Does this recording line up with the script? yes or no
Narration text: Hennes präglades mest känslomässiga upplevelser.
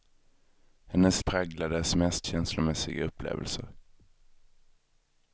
yes